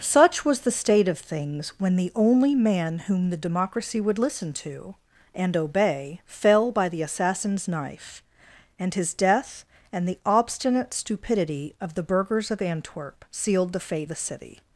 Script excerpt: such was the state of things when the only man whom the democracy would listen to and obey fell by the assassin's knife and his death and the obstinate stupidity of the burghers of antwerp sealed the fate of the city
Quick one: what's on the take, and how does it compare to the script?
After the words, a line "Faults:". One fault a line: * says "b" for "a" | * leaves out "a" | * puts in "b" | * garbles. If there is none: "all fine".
such was the state of things when the only man whom the democracy would listen to and obey fell by the assassin's knife and his death and the obstinate stupidity of the burghers of antwerp sealed the fate the city
Faults:
* leaves out "of"